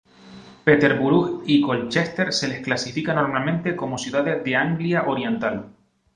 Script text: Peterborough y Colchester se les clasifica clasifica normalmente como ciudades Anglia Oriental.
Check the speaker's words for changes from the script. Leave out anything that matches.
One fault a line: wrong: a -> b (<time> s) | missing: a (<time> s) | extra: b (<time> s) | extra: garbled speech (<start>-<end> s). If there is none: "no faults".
missing: clasifica (3.1 s)
extra: de (4.5 s)